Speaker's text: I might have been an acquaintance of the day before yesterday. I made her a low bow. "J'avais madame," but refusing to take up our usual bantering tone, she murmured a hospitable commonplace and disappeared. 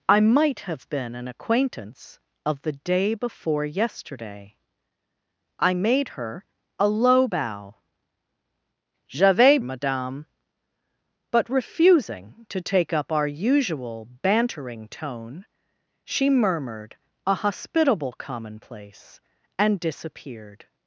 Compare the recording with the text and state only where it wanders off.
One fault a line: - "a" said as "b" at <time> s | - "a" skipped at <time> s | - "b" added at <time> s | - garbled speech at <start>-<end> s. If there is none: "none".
none